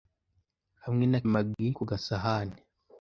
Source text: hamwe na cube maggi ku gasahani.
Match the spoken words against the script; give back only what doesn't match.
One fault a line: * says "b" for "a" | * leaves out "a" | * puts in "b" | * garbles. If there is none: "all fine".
* leaves out "cube"